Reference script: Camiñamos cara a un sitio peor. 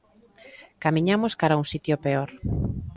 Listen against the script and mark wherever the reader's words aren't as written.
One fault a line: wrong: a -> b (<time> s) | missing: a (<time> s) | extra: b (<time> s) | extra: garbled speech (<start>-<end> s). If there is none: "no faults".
no faults